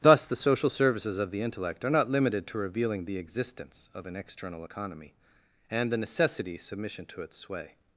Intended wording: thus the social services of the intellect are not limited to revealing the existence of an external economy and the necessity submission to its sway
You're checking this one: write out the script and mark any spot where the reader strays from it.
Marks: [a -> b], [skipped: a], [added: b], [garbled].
thus the social services of the intellect are not limited to revealing the existence of an external economy and the necessity submission to its sway